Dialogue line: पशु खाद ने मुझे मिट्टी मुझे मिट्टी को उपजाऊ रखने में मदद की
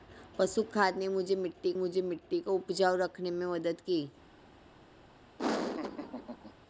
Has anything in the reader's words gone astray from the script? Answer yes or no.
no